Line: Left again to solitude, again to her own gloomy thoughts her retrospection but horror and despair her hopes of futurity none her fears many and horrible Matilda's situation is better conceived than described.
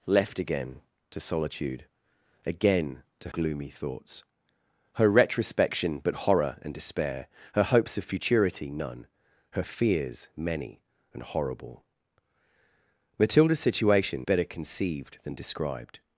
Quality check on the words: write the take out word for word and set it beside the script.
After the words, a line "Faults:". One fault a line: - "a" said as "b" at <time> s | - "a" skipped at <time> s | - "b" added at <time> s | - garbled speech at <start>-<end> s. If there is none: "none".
Left again to solitude, again to gloomy thoughts her retrospection but horror and despair her hopes of futurity none her fears many and horrible Matilda's situation better conceived than described.
Faults:
- "her own" skipped at 3.3 s
- "is" skipped at 14.3 s